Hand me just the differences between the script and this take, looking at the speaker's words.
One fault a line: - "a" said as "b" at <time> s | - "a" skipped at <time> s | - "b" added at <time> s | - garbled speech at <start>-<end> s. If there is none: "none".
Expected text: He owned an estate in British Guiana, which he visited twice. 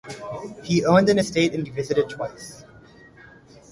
- "British Guiana which" skipped at 1.6 s